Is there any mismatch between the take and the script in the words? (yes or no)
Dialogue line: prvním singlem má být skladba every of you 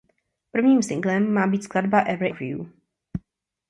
no